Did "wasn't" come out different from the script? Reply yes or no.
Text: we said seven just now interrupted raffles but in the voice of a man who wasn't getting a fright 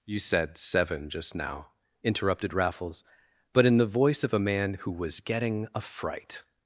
yes